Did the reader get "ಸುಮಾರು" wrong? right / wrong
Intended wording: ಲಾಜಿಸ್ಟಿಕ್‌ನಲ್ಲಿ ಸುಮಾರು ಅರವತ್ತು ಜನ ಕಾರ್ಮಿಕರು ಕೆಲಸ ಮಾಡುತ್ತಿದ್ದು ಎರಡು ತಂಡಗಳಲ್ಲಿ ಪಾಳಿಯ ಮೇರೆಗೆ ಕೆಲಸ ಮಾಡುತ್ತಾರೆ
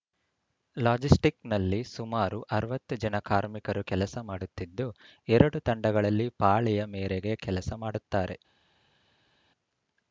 right